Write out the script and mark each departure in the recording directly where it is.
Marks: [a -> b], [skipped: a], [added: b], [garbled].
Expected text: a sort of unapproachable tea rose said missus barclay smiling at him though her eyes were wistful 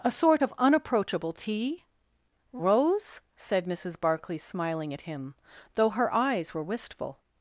a sort of unapproachable tea rose said missus barclay smiling at him though her eyes were wistful